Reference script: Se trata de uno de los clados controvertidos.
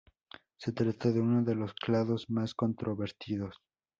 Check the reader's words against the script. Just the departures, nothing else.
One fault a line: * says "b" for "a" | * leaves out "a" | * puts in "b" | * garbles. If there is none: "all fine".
* puts in "más"